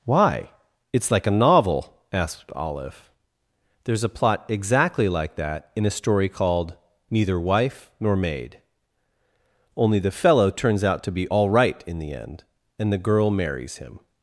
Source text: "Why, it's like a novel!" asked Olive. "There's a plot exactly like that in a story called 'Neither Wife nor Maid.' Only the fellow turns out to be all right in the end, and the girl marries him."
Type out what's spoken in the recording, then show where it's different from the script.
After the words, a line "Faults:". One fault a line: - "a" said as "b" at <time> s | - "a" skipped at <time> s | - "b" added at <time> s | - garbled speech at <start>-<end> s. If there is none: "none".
"Why, it's like a novel!" asked Olive. "There's a plot exactly like that in a story called 'Neither Wife nor Maid.' Only the fellow turns out to be all right in the end, and the girl marries him."
Faults:
none